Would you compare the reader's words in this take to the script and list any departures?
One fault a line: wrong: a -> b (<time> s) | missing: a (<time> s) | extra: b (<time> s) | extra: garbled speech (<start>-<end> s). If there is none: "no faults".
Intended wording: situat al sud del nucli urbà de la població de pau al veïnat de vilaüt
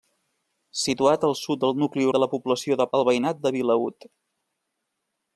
missing: urbà (2.1 s)
missing: pau (2.9 s)